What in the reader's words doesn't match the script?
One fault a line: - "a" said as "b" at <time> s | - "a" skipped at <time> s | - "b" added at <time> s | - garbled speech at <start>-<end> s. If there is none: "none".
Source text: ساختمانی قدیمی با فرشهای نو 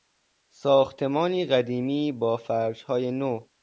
none